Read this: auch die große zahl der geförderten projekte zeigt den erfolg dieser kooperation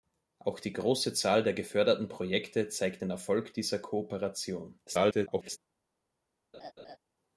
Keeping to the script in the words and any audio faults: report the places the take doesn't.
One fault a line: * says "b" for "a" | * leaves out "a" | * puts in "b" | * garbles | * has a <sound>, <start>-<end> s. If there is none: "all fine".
* garbles
* has a laugh, 6.5-7.0 s